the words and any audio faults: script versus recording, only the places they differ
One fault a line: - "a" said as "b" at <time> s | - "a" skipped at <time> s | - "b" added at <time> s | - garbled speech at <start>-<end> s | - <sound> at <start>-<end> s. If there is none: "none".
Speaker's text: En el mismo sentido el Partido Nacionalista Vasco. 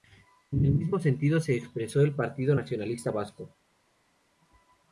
- "se expresó" added at 1.4 s